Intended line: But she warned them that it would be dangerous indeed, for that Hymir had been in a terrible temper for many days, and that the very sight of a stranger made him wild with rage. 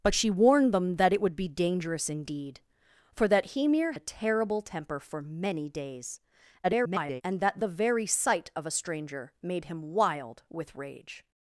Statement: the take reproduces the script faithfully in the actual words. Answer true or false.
false